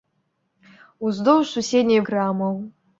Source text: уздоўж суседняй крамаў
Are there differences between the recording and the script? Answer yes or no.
no